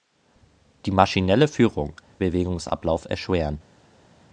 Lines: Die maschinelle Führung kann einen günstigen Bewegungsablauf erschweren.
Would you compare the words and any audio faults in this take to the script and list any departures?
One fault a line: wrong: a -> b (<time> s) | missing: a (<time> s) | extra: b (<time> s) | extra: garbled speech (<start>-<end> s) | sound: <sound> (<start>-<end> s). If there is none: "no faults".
missing: kann einen günstigen (1.9 s)